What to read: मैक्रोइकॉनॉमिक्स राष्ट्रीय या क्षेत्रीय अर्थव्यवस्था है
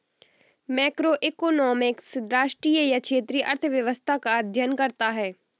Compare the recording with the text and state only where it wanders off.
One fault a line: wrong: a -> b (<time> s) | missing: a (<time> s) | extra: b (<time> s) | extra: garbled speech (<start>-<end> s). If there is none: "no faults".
extra: का अध्ययन करता (4.2 s)